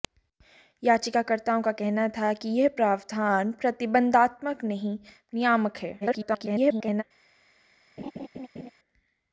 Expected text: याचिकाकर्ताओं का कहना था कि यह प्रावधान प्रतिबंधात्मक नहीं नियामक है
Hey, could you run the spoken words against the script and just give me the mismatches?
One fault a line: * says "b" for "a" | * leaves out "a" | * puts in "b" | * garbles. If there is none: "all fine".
* garbles